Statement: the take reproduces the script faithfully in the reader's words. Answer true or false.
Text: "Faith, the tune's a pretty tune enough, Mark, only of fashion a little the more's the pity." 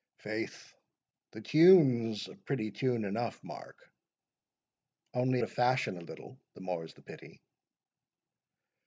true